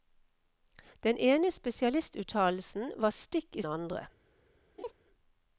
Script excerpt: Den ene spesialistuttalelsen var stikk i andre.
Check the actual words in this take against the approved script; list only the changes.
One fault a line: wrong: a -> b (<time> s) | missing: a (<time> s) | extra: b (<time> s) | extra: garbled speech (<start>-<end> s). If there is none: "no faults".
no faults